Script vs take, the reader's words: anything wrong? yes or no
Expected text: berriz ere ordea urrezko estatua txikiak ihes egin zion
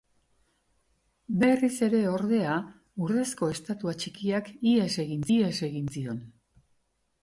yes